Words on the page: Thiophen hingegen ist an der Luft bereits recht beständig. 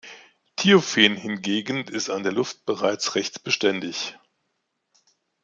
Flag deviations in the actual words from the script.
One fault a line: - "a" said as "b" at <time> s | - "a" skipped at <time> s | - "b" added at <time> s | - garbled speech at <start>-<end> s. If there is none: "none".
none